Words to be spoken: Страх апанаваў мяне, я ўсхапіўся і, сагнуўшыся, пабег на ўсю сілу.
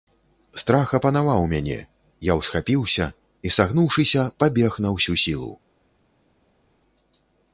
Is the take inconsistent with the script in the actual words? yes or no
no